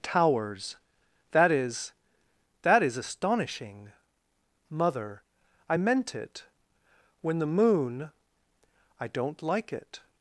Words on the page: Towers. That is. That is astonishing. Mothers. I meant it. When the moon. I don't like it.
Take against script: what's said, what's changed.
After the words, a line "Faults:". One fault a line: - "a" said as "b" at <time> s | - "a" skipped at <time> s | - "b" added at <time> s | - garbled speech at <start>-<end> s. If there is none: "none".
Towers. That is. That is astonishing. Mother. I meant it. When the moon. I don't like it.
Faults:
- "Mothers" said as "Mother" at 4.7 s